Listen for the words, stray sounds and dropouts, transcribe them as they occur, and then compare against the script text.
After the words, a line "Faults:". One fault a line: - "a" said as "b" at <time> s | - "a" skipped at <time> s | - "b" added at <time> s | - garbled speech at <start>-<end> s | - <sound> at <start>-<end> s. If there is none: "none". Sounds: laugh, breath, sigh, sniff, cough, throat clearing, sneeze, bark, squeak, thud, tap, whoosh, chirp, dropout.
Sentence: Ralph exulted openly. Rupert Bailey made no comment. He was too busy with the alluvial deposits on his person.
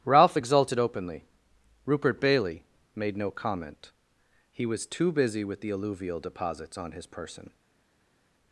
Ralph exulted openly. Rupert Bailey made no comment. He was too busy with the alluvial deposits on his person.
Faults:
none